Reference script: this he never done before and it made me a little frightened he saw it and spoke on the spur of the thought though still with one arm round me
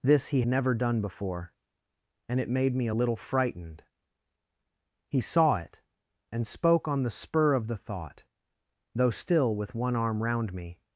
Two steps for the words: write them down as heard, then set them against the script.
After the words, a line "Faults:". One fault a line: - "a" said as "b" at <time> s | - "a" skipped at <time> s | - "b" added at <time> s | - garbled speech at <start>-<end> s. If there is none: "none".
this he never done before and it made me a little frightened he saw it and spoke on the spur of the thought though still with one arm round me
Faults:
none